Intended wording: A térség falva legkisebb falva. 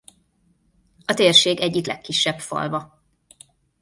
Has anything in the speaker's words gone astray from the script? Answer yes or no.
yes